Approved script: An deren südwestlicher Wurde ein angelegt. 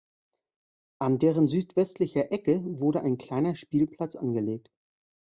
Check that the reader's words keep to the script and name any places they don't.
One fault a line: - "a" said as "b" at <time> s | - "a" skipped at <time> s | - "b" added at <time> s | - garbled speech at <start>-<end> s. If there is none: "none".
- "Ecke" added at 2.3 s
- "kleiner Spielplatz" added at 3.2 s